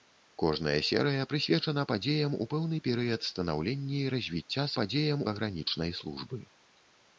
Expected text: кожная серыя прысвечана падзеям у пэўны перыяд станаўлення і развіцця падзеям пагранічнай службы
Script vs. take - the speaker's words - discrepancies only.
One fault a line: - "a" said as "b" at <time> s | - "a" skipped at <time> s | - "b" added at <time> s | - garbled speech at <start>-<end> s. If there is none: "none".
none